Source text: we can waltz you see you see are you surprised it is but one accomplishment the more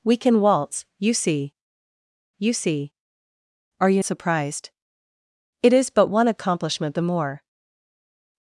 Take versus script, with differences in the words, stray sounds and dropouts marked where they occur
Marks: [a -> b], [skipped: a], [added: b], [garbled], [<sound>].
we can waltz you see you see are you surprised it is but one accomplishment the more